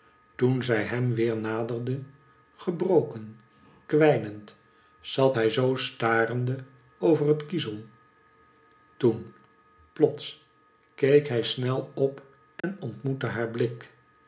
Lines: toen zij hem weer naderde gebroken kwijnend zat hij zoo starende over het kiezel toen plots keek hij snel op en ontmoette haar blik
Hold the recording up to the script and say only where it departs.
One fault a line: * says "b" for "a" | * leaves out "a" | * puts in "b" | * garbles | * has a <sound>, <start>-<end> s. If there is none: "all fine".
* has a dropout, 12.6-12.6 s